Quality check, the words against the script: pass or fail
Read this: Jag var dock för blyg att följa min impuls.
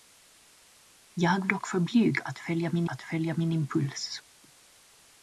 fail